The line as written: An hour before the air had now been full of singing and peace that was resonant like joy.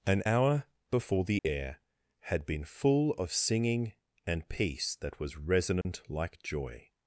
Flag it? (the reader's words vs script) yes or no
yes